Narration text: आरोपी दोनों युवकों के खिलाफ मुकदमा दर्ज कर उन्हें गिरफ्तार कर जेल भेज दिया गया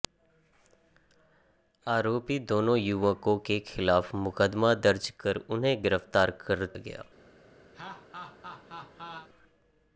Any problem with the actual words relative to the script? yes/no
yes